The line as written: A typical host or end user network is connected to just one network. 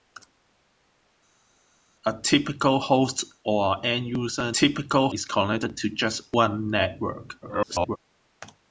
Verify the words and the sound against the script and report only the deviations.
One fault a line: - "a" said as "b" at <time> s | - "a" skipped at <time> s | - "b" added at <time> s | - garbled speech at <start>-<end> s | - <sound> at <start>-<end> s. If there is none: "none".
- "network" said as "typical" at 4.5 s
- garbled speech at 7.4-8.0 s